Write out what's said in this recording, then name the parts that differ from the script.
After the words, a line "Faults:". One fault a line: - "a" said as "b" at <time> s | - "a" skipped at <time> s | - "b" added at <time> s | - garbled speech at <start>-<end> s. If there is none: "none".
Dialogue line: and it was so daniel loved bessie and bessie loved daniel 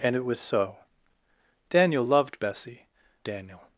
and it was so daniel loved bessie daniel
Faults:
- "and bessie loved" skipped at 2.9 s